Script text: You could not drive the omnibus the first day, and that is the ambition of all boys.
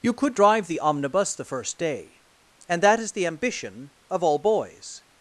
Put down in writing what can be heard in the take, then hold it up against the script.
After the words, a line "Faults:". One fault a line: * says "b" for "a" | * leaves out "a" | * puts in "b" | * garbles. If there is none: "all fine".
You could drive the omnibus the first day, and that is the ambition of all boys.
Faults:
* leaves out "not"